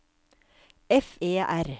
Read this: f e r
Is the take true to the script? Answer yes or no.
yes